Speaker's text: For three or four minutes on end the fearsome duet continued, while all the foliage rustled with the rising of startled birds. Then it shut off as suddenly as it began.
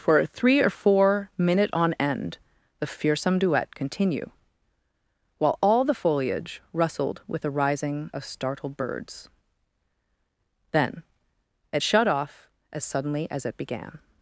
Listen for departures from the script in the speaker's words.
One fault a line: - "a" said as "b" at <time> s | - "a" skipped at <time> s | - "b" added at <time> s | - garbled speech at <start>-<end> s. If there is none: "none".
- "minutes" said as "minute" at 1.4 s
- "continued" said as "continue" at 3.8 s